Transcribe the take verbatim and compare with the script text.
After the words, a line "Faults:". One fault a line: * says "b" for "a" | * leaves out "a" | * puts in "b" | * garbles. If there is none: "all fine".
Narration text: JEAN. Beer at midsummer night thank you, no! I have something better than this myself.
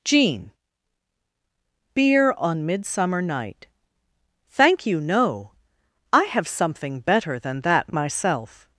JEAN. Beer on midsummer night thank you, no! I have something better than that myself.
Faults:
* says "on" for "at"
* says "that" for "this"